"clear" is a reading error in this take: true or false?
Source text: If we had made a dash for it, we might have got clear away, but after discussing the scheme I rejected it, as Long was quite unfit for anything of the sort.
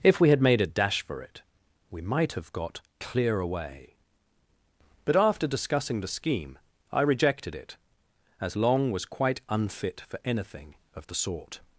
false